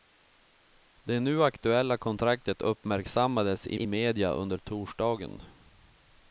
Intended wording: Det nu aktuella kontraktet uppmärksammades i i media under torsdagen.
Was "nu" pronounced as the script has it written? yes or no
yes